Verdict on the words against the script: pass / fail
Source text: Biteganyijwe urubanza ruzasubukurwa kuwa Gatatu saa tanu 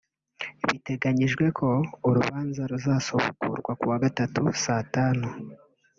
fail